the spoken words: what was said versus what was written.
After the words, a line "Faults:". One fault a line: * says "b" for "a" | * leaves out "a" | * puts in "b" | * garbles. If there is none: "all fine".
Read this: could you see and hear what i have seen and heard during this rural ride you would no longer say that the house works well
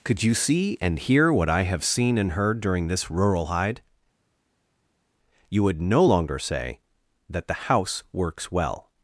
could you see and hear what i have seen and heard during this rural hide you would no longer say that the house works well
Faults:
* says "hide" for "ride"